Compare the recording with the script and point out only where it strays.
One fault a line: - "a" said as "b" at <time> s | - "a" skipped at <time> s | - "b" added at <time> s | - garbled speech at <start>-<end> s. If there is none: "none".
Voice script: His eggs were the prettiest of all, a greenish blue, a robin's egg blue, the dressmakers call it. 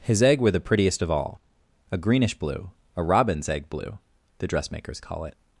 - "eggs" said as "egg" at 0.2 s